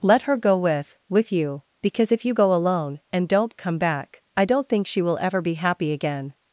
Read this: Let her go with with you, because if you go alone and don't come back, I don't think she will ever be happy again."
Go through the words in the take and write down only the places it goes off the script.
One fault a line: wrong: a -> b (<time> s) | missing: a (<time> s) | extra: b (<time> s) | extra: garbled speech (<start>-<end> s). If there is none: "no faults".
no faults